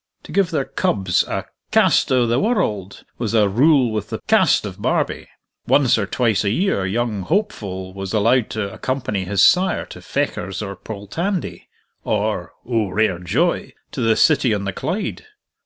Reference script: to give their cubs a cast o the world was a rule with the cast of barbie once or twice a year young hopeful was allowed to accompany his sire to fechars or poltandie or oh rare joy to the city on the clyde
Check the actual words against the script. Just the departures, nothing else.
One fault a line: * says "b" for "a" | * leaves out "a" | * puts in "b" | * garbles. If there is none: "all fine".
all fine